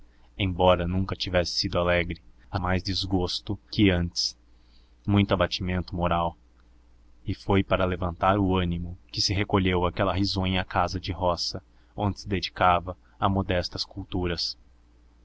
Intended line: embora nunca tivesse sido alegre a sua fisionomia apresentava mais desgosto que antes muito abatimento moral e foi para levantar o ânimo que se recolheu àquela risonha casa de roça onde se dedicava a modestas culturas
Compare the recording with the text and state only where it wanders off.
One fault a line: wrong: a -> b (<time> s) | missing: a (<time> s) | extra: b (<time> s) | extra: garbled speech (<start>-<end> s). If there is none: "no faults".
missing: sua fisionomia apresentava (2.6 s)